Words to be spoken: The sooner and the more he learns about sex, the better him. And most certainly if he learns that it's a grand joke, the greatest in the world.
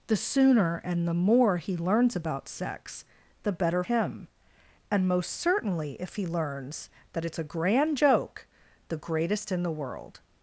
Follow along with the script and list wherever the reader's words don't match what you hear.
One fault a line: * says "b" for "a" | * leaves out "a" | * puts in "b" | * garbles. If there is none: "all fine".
all fine